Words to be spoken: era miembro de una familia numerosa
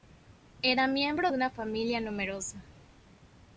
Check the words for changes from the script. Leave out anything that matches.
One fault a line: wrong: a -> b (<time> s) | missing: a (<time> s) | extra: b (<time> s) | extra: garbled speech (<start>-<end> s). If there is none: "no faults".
no faults